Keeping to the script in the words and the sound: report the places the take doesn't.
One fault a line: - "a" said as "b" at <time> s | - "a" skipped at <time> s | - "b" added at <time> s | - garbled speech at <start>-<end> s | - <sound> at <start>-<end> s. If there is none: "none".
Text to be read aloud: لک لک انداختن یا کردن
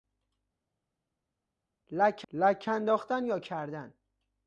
none